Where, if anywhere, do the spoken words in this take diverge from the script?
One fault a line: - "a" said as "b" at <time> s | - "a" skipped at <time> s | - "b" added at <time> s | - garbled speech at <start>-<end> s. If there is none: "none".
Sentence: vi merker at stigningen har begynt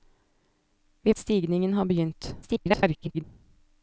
- "merker" skipped at 1.1 s
- garbled speech at 2.4-3.2 s